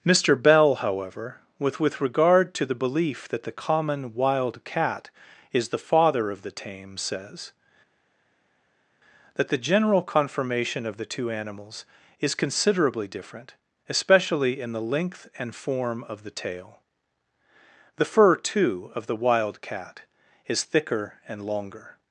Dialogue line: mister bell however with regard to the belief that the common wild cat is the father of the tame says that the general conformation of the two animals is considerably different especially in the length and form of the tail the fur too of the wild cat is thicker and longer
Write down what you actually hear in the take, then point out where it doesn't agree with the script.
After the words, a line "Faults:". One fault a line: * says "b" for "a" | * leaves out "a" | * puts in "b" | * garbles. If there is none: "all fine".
mister bell however with with regard to the belief that the common wild cat is the father of the tame says that the general conformation of the two animals is considerably different especially in the length and form of the tail the fur too of the wild cat is thicker and longer
Faults:
* puts in "with"